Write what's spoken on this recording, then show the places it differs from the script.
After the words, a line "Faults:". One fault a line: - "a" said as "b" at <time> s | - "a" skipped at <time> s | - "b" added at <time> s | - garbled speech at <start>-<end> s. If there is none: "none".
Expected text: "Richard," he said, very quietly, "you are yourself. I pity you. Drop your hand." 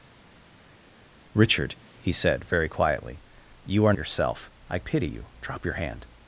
"Richard," he said, very quietly, "you are yourself. I pity you. Drop your hand."
Faults:
none